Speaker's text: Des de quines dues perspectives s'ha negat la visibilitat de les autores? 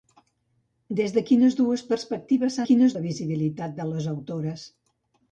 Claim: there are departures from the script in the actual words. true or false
true